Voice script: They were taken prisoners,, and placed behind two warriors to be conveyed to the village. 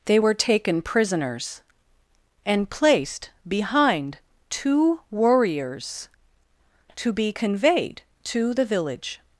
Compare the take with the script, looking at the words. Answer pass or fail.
pass